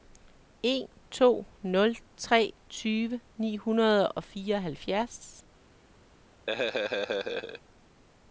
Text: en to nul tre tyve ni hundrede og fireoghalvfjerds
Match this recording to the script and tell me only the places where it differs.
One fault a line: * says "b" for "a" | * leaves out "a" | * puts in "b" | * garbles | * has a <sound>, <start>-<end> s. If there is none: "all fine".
* has a laugh, 6.5-7.6 s